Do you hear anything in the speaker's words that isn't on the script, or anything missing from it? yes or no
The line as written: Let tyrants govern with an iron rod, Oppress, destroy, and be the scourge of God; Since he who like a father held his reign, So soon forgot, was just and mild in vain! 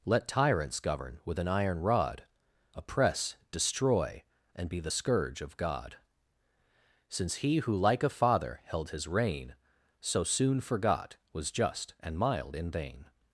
no